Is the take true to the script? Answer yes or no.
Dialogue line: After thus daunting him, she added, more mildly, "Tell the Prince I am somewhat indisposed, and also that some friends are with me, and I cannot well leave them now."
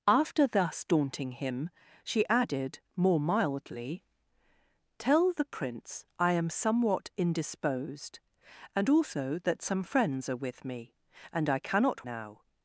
no